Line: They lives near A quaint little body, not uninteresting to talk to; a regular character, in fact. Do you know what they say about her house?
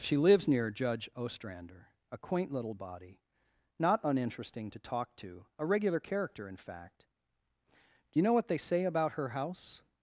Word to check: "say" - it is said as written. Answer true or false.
true